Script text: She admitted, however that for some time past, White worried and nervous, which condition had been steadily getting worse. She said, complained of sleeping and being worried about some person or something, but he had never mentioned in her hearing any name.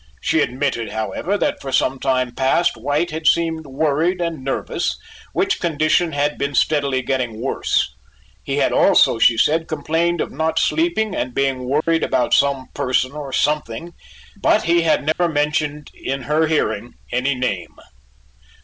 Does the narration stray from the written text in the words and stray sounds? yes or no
yes